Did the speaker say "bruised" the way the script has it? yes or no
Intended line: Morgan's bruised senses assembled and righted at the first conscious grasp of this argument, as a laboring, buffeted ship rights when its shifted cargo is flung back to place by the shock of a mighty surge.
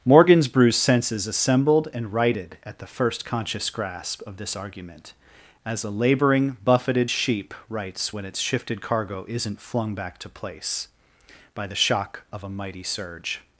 yes